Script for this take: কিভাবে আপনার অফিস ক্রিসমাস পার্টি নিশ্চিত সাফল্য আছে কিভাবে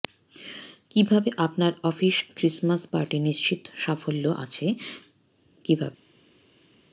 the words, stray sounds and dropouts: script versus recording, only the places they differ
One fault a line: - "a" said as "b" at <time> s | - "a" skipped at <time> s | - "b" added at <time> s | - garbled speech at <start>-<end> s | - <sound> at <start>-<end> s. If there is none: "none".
none